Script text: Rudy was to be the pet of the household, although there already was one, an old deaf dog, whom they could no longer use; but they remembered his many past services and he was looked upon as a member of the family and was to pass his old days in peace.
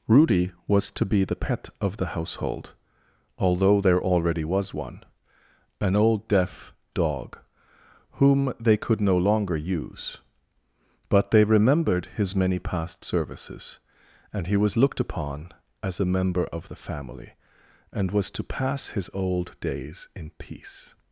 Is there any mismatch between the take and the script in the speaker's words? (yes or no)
no